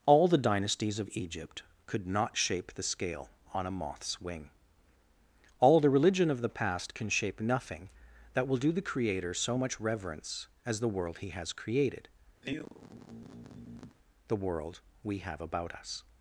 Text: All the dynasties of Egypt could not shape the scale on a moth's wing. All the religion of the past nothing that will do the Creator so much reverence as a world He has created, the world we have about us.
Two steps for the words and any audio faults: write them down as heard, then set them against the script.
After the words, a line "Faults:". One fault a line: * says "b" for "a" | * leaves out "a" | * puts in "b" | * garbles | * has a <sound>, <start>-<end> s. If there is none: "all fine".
All the dynasties of Egypt could not shape the scale on a moth's wing. All the religion of the past can shape nothing that will do the Creator so much reverence as the world He has created, the world we have about us.
Faults:
* puts in "can shape"
* says "the" for "a"
* has a sigh, 12.4-14.0 s